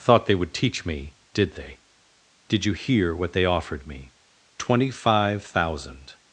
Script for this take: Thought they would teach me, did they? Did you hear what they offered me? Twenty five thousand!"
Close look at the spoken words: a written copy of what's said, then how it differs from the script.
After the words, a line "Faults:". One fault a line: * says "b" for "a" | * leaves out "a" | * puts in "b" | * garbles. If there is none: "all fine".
Thought they would teach me, did they? Did you hear what they offered me? Twenty five thousand!"
Faults:
all fine